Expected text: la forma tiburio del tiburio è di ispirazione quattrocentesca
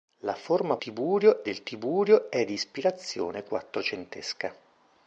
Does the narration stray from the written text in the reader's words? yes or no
no